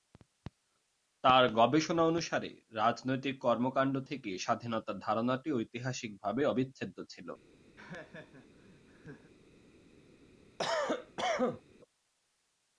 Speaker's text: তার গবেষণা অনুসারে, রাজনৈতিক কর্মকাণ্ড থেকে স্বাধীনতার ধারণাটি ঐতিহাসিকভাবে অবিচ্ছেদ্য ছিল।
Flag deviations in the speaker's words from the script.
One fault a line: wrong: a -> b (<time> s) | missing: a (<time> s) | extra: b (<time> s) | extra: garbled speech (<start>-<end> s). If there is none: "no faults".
no faults